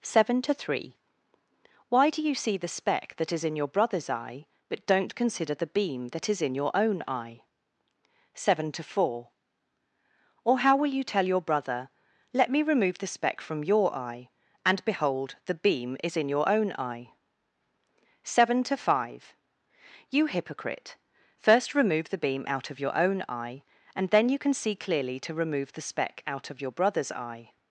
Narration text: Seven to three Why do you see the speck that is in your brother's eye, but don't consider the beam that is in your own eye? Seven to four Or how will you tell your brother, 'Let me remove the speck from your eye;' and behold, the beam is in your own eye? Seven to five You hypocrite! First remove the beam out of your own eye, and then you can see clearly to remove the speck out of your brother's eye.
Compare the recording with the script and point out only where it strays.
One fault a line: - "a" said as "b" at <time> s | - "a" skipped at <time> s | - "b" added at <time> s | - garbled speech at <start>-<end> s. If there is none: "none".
none